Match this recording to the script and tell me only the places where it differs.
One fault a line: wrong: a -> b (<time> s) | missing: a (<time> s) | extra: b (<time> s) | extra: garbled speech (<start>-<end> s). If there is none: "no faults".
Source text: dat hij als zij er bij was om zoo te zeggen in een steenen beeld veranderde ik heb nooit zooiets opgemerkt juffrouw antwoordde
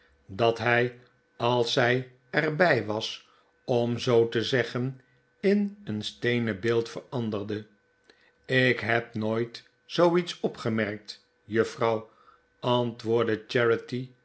no faults